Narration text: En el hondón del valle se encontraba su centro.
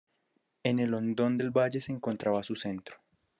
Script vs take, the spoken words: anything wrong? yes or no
no